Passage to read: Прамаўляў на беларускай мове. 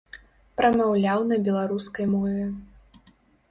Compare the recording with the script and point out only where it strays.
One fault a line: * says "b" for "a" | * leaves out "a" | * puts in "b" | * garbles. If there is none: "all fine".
all fine